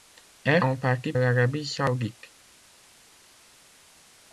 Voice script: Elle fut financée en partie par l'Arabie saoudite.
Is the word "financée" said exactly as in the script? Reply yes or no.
no